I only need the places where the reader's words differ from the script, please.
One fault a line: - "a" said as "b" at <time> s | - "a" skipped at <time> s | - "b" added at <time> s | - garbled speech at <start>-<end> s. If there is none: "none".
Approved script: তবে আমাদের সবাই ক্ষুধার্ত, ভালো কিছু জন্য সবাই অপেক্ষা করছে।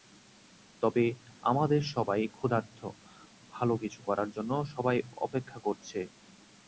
- "করার" added at 4.1 s